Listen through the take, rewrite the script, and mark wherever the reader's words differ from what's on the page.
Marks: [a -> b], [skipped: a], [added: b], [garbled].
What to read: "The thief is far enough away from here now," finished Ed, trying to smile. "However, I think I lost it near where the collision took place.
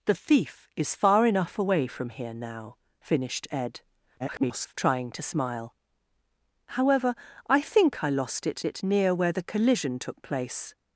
"The thief is far enough away from here now," finished Ed, [garbled] trying to smile. "However, I think I lost it [added: it] near where the collision took place.